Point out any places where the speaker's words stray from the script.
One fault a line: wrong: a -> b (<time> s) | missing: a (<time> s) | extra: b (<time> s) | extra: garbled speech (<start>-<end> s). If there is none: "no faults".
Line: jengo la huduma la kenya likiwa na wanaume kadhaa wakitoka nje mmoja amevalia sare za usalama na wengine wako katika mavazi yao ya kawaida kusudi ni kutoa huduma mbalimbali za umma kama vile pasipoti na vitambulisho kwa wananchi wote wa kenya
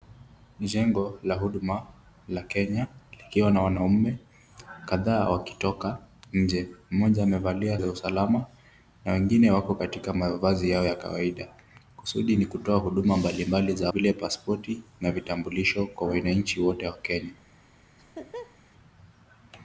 missing: sare (7.8 s)
missing: umma kama (13.9 s)